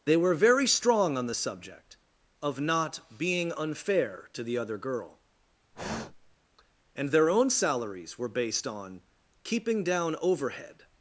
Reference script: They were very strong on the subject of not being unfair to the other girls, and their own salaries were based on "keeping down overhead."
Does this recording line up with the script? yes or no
no